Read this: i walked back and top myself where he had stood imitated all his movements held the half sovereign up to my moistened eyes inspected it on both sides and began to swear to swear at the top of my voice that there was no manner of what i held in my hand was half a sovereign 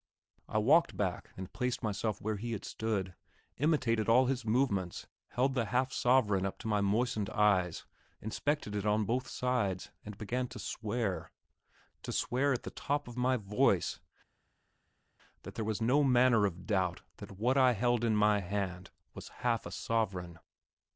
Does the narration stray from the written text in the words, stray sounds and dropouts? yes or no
yes